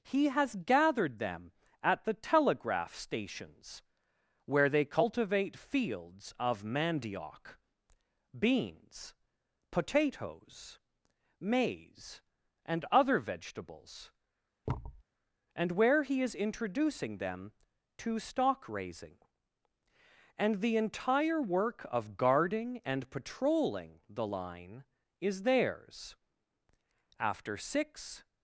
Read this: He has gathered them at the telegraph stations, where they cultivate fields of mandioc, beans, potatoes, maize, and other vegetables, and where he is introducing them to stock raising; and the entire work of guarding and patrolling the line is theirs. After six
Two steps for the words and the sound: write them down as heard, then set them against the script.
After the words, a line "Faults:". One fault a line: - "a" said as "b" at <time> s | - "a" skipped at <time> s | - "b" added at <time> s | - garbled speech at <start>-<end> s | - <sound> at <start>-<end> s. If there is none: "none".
He has gathered them at the telegraph stations, where they cultivate fields of mandioc, beans, potatoes, maize, and other vegetables, and where he is introducing them to stock raising; and the entire work of guarding and patrolling the line is theirs. After six
Faults:
- thud at 14.7-15.0 s